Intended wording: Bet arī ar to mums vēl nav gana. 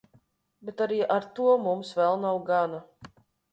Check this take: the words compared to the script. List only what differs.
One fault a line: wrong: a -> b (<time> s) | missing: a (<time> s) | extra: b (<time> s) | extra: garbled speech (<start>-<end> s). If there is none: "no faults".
no faults